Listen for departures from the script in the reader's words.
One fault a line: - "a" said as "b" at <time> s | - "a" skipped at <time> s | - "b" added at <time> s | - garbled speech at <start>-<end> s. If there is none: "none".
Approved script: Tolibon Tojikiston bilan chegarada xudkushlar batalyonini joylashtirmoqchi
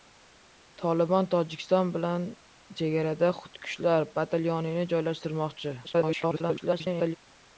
- garbled speech at 5.8-7.2 s